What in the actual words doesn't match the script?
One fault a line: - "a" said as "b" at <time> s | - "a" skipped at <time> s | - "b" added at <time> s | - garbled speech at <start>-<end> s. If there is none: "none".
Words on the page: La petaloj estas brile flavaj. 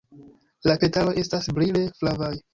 none